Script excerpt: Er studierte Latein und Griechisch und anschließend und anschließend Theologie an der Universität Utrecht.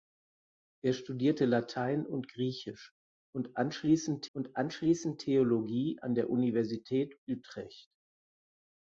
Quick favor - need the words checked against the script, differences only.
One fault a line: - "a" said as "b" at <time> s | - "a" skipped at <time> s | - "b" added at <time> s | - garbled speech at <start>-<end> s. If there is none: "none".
none